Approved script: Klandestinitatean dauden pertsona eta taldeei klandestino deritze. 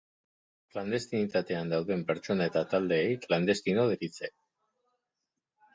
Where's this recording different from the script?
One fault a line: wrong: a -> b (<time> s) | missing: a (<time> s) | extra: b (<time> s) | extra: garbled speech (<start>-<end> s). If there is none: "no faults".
no faults